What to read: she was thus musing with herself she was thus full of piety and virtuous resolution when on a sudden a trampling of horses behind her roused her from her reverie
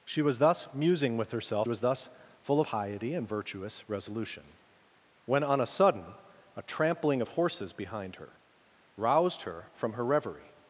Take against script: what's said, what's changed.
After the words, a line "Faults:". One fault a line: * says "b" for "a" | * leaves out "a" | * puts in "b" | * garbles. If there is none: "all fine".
she was thus musing with herself was thus full piety and virtuous resolution when on a sudden a trampling of horses behind her roused her from her reverie
Faults:
* leaves out "she"
* leaves out "of"